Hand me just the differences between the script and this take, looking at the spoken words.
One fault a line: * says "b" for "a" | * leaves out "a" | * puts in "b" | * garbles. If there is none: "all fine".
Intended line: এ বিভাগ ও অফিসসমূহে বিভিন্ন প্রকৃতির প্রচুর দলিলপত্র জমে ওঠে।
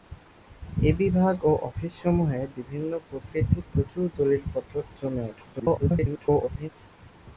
* garbles